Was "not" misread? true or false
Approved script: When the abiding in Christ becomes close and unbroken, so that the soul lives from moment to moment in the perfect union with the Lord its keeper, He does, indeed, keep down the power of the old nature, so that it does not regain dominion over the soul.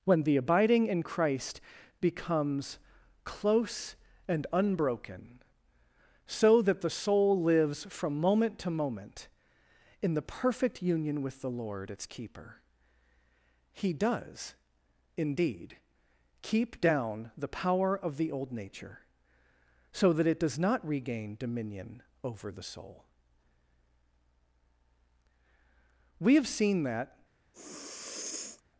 false